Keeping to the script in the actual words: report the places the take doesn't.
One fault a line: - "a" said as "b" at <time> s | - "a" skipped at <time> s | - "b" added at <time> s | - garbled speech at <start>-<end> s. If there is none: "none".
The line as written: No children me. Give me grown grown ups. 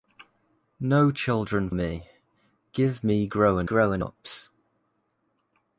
none